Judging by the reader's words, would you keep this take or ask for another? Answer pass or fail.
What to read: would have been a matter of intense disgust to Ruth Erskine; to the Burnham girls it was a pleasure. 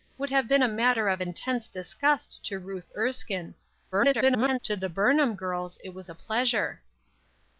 fail